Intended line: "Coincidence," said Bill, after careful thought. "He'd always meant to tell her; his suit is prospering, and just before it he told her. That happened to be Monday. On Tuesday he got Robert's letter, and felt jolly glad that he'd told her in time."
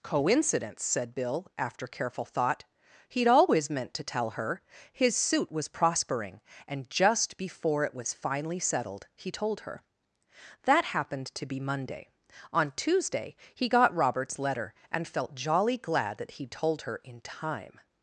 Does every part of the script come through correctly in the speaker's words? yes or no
no